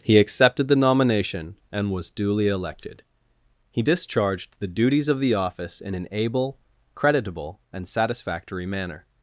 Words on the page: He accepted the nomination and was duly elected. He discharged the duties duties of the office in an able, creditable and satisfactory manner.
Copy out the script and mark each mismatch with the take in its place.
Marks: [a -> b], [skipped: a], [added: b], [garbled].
He accepted the nomination and was duly elected. He discharged the duties [skipped: duties] of the office in an able, creditable and satisfactory manner.